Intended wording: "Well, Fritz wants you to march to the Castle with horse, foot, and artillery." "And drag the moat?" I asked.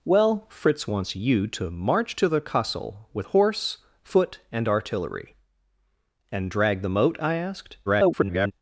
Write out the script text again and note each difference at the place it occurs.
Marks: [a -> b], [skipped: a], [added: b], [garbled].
"Well, Fritz wants you to march to the Castle with horse, foot, and artillery." "And drag the moat?" I asked. [garbled]